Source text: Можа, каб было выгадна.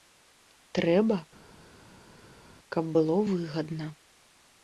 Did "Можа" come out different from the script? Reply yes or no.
yes